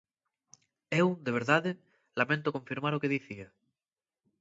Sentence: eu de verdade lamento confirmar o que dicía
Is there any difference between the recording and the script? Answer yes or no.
no